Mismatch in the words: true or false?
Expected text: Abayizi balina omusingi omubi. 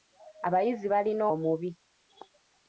true